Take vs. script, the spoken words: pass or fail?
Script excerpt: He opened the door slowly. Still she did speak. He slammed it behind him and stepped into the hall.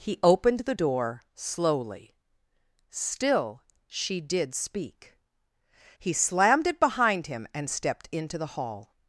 pass